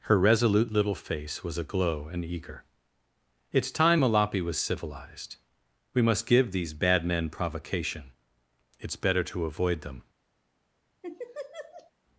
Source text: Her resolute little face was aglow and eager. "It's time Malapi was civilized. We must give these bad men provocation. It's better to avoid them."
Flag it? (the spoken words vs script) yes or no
no